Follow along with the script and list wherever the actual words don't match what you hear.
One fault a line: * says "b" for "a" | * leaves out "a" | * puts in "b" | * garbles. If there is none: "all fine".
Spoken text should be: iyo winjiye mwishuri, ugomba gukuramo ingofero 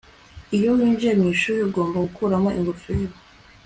all fine